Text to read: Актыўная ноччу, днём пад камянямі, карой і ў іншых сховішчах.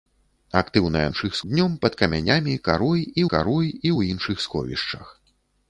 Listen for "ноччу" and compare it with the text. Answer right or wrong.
wrong